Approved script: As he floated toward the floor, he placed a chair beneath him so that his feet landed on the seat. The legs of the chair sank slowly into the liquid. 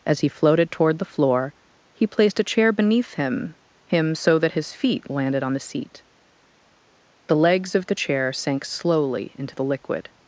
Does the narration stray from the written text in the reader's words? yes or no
yes